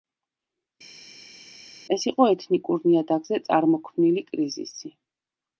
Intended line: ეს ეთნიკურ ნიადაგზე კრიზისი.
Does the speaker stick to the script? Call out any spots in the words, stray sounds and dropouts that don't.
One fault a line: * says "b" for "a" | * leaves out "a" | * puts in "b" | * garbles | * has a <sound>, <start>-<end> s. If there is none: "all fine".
* puts in "იყო"
* puts in "წარმოქმნილი"